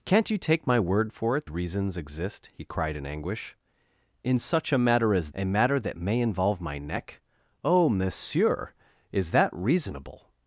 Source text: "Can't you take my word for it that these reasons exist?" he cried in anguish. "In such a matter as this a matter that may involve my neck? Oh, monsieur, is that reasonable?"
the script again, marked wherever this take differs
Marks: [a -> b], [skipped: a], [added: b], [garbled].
"Can't you take my word for it [skipped: that these] reasons exist?" he cried in anguish. "In such a matter as [skipped: this] a matter that may involve my neck? Oh, monsieur, is that reasonable?"